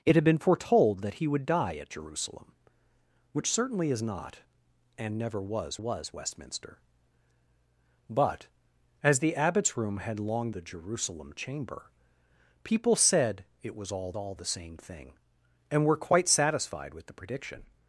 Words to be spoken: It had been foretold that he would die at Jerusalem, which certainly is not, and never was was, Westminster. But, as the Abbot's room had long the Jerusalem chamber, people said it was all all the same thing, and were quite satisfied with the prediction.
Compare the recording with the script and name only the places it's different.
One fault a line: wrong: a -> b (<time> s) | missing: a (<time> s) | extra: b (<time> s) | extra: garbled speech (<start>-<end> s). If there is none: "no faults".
no faults